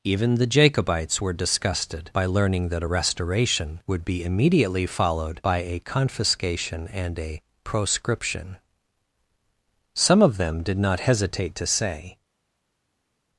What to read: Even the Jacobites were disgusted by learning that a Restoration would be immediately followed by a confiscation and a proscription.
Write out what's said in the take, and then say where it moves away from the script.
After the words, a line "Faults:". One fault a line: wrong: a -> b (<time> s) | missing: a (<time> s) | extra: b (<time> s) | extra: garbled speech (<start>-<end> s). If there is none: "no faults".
Even the Jacobites were disgusted by learning that a Restoration would be immediately followed by a confiscation and a proscription. Some of them did not hesitate to say
Faults:
extra: Some of them did not hesitate to say (9.9 s)